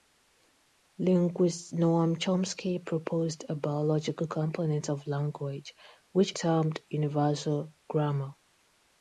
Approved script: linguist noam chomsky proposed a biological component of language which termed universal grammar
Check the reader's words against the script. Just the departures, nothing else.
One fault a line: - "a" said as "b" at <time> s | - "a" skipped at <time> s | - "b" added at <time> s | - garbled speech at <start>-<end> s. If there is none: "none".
none